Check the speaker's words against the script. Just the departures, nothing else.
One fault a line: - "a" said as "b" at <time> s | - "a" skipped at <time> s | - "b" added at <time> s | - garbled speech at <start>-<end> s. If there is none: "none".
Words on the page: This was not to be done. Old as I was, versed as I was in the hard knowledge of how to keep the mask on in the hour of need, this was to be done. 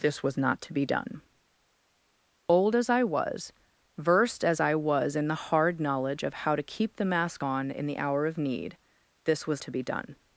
none